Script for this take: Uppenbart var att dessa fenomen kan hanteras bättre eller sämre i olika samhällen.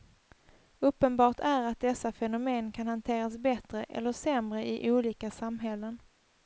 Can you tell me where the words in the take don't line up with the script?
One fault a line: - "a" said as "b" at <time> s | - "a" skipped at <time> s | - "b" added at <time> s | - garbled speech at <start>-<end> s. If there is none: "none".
- "var" said as "är" at 1.4 s